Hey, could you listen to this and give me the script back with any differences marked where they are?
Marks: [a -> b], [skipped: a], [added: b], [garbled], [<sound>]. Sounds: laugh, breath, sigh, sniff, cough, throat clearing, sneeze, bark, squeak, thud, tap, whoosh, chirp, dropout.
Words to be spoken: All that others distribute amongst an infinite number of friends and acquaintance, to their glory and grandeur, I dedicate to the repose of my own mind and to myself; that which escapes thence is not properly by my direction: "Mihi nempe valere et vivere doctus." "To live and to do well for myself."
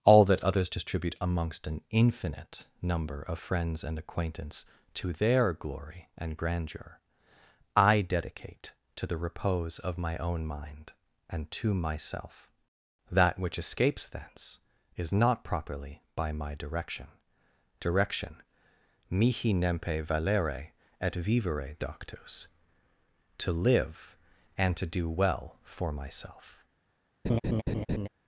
All that others distribute amongst an infinite number of friends and acquaintance, to their glory and grandeur, I dedicate to the repose of my own mind and to myself; that which escapes thence is not properly by my direction: [added: direction] "Mihi nempe valere et vivere doctus." "To live and to do well for myself." [laugh]